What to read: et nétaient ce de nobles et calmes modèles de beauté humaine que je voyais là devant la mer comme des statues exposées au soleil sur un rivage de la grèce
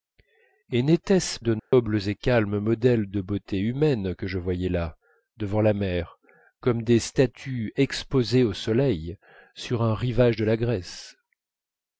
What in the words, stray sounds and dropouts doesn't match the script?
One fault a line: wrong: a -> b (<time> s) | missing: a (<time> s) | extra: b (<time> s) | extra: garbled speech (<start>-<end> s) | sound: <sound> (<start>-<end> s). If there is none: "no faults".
sound: dropout (1.6-1.7 s)